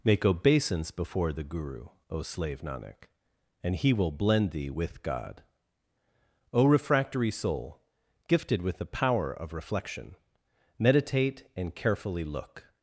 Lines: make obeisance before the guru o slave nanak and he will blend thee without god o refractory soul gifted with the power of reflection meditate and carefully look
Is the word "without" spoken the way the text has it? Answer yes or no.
no